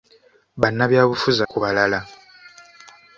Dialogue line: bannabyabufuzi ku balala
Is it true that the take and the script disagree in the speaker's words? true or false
false